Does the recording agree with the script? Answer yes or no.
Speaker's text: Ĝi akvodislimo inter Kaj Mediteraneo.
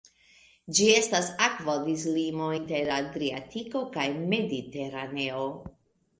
no